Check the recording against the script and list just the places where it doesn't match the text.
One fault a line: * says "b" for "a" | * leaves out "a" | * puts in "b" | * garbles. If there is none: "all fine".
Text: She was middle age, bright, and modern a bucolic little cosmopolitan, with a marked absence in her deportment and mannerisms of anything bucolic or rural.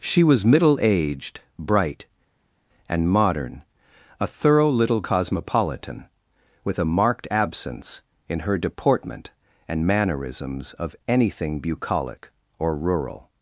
* says "aged" for "age"
* says "thorough" for "bucolic"